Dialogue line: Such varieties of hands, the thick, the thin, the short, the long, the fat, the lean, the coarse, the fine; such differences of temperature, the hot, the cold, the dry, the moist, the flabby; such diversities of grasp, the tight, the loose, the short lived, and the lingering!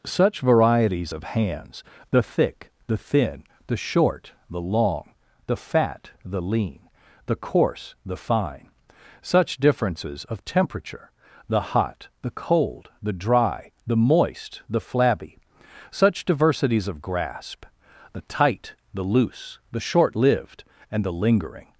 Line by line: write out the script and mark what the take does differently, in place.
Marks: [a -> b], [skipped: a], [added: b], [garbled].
Such varieties of hands, the thick, the thin, the short, the long, the fat, the lean, the coarse, the fine; such differences of temperature, the hot, the cold, the dry, the moist, the flabby; such diversities of grasp, the tight, the loose, the short lived, and the lingering!